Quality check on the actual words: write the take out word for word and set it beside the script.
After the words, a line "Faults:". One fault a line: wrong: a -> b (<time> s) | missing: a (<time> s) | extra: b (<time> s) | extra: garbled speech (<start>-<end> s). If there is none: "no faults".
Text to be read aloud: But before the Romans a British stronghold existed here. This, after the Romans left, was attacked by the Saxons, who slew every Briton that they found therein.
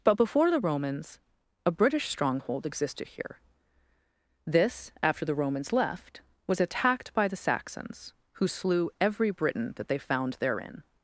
But before the Romans a British stronghold existed here. This, after the Romans left, was attacked by the Saxons, who slew every Briton that they found therein.
Faults:
no faults